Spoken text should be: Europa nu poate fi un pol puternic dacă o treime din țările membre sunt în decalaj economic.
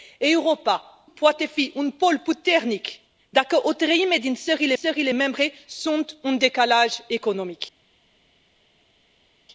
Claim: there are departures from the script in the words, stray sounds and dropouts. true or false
true